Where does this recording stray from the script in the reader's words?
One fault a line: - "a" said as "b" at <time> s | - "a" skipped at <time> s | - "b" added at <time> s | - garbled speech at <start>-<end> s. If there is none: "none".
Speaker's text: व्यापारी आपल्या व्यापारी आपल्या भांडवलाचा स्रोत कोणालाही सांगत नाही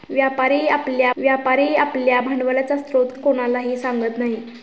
none